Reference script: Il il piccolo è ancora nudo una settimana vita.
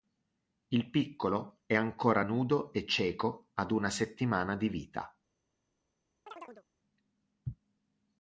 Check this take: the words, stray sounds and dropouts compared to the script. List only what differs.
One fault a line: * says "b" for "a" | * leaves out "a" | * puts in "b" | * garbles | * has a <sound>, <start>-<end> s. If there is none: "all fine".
* leaves out "il"
* puts in "e cieco ad"
* puts in "di"
* has a chirp, 6.3-6.7 s